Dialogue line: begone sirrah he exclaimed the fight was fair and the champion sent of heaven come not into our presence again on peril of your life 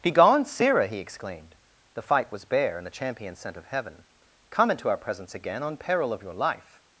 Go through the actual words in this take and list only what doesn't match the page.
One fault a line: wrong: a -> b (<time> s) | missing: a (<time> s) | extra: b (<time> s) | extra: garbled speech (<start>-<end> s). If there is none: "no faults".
wrong: fair -> bare (2.5 s)
missing: not (4.7 s)